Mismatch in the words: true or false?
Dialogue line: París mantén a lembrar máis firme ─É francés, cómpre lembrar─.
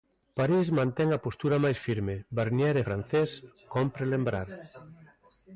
true